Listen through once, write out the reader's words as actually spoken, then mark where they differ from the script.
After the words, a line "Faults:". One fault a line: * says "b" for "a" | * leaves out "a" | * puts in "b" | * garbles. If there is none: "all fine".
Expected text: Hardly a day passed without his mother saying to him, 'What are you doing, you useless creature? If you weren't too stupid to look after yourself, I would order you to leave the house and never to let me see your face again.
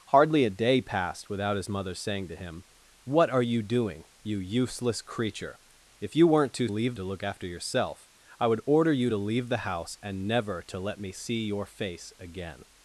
Hardly a day passed without his mother saying to him, 'What are you doing, you useless creature? If you weren't too leave to look after yourself, I would order you to leave the house and never to let me see your face again.
Faults:
* says "leave" for "stupid"